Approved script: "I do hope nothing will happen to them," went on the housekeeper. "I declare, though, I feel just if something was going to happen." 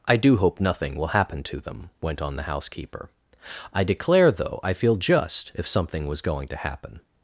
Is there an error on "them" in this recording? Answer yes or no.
no